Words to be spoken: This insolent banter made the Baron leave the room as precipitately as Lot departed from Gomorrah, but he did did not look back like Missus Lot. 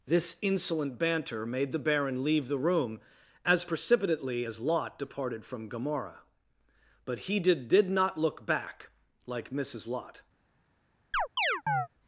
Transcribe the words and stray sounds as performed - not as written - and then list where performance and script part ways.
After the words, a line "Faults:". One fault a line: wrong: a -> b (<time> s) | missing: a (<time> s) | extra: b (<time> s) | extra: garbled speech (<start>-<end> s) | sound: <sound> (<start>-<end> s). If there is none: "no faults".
This insolent banter made the Baron leave the room as precipitately as Lot departed from Gomorrah, but he did did not look back like Missus Lot.
Faults:
sound: chirp (11.1-11.9 s)